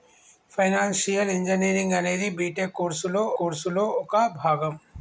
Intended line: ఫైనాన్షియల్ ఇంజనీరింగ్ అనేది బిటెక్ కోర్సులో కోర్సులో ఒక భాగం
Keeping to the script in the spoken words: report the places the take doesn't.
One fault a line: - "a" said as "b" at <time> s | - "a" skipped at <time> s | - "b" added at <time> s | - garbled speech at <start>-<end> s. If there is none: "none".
none